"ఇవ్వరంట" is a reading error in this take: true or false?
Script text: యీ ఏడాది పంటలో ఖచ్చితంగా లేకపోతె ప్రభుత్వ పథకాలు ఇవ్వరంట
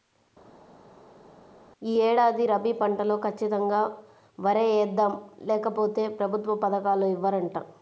false